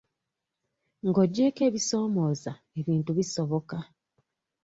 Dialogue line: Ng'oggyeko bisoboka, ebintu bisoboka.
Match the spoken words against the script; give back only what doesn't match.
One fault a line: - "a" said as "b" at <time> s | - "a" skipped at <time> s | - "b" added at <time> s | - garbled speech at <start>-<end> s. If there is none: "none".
- "bisoboka" said as "ebisoomooza" at 1.7 s